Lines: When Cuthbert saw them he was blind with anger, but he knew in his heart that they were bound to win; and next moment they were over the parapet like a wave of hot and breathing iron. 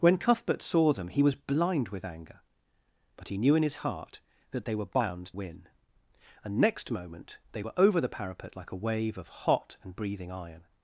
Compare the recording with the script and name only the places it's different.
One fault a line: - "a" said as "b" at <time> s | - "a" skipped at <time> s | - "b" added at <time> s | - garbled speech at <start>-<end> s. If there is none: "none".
- "to" skipped at 5.3 s